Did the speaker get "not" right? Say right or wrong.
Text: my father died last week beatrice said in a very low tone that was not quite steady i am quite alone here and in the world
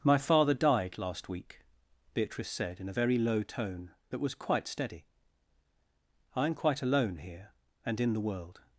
wrong